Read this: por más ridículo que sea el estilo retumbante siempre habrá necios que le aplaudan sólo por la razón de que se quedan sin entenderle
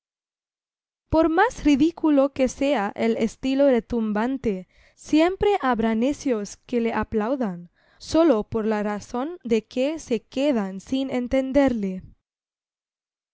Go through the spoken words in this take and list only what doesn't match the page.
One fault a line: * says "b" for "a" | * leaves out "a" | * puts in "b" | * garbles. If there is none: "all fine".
all fine